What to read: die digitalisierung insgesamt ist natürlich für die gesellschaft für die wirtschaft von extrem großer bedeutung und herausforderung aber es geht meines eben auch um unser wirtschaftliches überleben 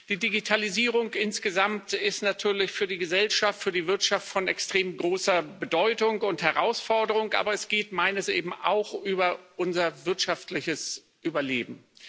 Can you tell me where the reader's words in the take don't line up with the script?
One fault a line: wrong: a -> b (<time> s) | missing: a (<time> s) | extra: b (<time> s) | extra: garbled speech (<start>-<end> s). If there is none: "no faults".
no faults